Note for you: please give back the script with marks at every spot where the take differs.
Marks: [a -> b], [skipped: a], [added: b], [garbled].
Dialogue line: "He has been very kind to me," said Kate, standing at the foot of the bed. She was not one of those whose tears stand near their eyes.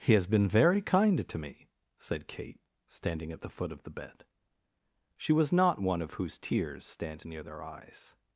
"He has been very kind to me," said Kate, standing at the foot of the bed. She was not one of [skipped: those] whose tears stand near their eyes.